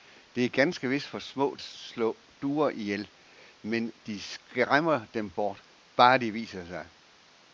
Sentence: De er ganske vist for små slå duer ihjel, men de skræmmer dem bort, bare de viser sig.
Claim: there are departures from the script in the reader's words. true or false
false